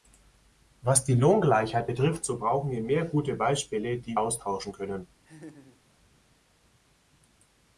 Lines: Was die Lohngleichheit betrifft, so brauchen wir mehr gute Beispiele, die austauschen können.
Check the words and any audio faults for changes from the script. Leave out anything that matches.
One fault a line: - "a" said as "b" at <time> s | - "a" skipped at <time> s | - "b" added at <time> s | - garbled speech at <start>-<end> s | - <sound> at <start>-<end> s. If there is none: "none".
- laugh at 5.2-5.8 s